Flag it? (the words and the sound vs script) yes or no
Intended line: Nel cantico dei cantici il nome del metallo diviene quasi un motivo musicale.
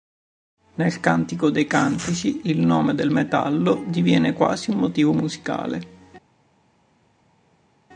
no